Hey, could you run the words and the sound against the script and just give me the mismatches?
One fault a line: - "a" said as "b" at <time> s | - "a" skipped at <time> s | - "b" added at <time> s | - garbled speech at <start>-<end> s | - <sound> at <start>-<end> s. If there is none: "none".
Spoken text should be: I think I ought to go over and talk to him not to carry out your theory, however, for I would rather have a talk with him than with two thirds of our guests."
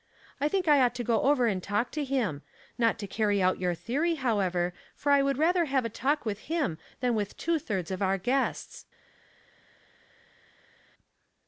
none